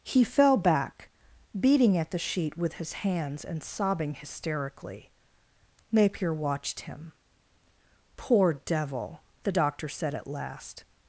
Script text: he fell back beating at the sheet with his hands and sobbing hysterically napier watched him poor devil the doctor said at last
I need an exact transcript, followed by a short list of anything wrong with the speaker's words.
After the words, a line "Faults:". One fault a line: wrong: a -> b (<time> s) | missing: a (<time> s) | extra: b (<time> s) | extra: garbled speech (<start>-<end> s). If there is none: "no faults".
he fell back beating at the sheet with his hands and sobbing hysterically napier watched him poor devil the doctor said at last
Faults:
no faults